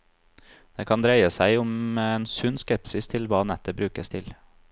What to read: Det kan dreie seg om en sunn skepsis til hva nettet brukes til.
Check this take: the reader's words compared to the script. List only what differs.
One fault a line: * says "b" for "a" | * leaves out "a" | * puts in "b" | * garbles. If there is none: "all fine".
all fine